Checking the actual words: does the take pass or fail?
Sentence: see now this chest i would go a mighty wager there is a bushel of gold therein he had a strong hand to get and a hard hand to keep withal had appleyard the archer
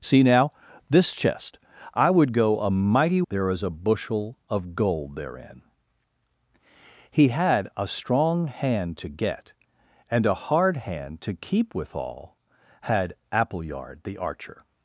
fail